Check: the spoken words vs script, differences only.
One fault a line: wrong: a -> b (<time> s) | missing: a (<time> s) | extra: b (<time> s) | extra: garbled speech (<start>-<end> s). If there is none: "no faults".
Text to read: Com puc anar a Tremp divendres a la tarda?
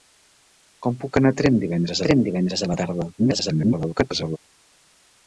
extra: Tremp divendres (2.1 s)
extra: garbled speech (3.2-4.4 s)